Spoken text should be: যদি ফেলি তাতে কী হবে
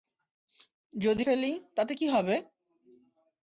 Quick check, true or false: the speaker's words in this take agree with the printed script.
true